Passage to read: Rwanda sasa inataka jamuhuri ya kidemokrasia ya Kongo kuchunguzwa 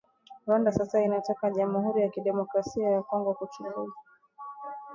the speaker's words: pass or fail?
pass